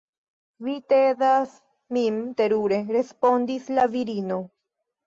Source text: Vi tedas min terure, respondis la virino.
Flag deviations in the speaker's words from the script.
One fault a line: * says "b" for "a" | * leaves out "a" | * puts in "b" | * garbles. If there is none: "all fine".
all fine